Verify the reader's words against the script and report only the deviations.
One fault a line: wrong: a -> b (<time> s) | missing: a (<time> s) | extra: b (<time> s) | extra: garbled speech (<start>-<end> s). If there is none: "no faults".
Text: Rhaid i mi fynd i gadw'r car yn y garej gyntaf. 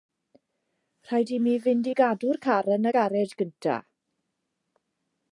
no faults